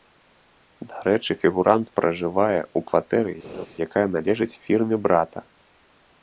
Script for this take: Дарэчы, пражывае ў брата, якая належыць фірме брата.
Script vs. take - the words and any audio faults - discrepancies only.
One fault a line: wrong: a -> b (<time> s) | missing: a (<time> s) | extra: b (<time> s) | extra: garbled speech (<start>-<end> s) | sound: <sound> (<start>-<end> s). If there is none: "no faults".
extra: фігурант (1.4 s)
wrong: брата -> кватэры (2.9 s)
sound: laugh (3.4-3.7 s)